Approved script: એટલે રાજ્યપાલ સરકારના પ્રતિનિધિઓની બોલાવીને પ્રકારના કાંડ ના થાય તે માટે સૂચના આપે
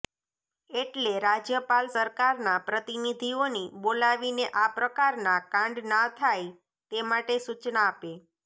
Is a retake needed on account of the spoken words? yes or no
yes